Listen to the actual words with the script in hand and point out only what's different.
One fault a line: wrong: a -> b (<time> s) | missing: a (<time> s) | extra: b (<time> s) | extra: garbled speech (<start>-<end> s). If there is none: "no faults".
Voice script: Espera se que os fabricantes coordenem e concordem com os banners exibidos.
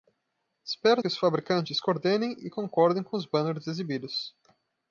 missing: se (1.0 s)